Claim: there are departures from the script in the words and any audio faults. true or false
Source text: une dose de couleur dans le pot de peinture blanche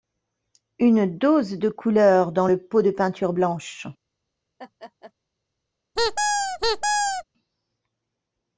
true